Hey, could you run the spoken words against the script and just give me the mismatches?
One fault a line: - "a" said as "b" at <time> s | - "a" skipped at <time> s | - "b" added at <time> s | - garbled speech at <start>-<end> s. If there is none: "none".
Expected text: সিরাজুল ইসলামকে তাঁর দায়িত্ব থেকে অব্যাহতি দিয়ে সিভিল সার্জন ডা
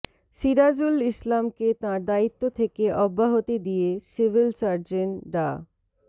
none